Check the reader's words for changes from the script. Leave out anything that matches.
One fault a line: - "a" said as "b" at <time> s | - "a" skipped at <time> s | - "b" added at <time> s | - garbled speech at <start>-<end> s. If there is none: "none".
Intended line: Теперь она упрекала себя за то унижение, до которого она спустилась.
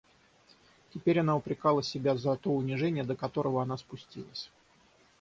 none